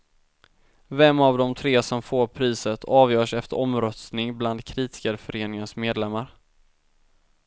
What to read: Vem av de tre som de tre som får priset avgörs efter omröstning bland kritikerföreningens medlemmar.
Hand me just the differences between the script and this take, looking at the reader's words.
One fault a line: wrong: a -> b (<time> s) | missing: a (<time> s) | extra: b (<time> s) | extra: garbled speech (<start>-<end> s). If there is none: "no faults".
missing: de tre som (2.0 s)